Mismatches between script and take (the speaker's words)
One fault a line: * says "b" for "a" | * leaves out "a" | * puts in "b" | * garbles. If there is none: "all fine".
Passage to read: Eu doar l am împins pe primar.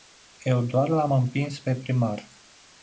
all fine